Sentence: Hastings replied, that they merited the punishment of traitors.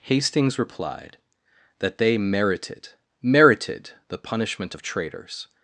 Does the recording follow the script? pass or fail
fail